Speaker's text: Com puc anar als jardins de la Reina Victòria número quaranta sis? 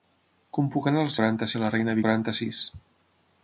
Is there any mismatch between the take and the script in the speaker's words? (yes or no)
yes